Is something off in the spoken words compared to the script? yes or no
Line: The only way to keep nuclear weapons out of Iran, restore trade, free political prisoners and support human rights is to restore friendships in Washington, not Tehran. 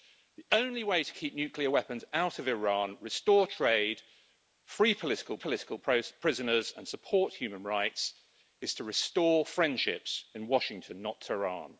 yes